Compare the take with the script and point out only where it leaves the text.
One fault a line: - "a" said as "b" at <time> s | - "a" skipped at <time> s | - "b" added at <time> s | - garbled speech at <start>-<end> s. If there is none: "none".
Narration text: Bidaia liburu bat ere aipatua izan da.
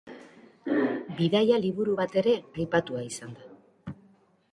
none